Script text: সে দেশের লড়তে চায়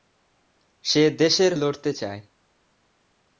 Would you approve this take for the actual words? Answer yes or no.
yes